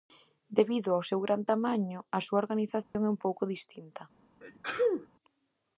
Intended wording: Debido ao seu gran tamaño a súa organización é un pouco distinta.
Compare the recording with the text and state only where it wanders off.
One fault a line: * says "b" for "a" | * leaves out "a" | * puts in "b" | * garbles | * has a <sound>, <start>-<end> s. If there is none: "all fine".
* has a dropout, 2.8-2.9 s
* has a sneeze, 4.4-5.1 s